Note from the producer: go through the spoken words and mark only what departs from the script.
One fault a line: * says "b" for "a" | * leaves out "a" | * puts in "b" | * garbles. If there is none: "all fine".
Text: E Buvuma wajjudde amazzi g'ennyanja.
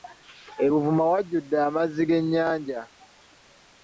all fine